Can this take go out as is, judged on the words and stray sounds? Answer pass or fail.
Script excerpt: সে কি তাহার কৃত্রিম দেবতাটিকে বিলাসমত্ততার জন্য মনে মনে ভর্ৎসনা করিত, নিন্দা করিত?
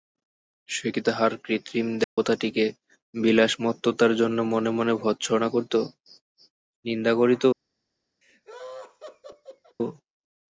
fail